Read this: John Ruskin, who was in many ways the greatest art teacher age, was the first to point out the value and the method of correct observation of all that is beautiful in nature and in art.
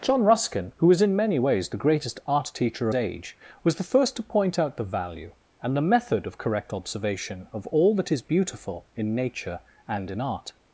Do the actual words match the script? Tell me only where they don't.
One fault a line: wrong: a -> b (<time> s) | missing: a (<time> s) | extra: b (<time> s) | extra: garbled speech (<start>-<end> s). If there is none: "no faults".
no faults